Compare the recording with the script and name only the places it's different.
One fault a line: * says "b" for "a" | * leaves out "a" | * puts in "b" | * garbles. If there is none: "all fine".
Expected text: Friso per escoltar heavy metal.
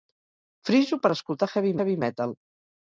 * puts in "heavy"